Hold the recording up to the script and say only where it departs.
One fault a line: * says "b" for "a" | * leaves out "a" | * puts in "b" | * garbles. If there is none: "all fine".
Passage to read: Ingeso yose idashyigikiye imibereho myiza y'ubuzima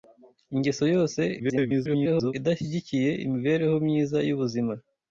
* garbles